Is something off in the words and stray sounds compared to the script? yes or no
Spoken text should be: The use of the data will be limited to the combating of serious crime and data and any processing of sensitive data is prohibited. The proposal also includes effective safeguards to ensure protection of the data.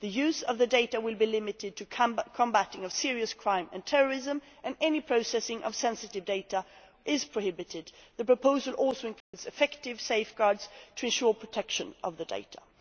yes